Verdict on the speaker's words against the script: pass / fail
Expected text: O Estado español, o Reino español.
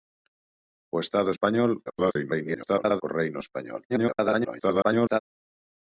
fail